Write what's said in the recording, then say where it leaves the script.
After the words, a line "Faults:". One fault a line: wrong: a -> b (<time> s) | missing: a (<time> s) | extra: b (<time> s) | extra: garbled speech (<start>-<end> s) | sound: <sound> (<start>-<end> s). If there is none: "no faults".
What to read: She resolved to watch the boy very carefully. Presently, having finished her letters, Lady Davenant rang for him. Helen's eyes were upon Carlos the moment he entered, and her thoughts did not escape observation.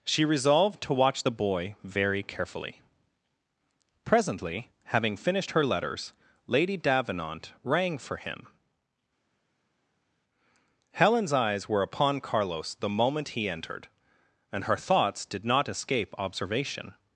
She resolved to watch the boy very carefully. Presently, having finished her letters, Lady Davenant rang for him. Helen's eyes were upon Carlos the moment he entered, and her thoughts did not escape observation.
Faults:
no faults